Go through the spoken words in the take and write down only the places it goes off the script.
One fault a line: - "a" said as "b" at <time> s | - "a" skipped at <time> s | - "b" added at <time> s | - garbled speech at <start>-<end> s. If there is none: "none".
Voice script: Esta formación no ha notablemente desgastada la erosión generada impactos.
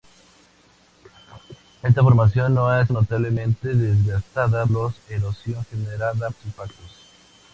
none